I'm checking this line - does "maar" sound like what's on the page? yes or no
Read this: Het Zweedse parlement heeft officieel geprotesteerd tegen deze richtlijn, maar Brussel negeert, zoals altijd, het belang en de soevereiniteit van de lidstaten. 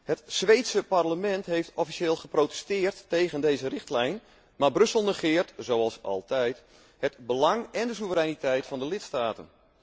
yes